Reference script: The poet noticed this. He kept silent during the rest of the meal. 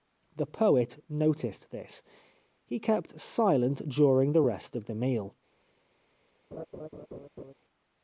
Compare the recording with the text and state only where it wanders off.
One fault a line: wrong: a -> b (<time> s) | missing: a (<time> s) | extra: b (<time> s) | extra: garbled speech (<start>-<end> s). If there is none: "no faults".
no faults